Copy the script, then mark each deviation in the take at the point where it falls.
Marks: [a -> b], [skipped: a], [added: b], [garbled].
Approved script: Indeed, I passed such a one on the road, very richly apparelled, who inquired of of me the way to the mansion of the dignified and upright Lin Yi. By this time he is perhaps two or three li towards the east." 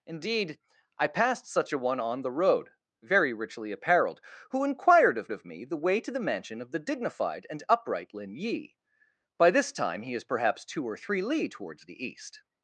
Indeed, I passed such a one on the road, very richly apparelled, who inquired of of me the way to the mansion of the dignified and upright Lin Yi. By this time he is perhaps two or three li towards the east."